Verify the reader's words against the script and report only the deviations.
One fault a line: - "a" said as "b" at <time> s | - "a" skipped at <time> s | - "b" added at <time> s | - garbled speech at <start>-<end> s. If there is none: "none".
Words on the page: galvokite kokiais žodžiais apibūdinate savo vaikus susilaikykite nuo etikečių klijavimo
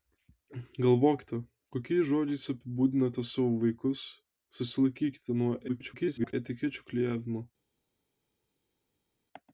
- garbled speech at 5.7-6.3 s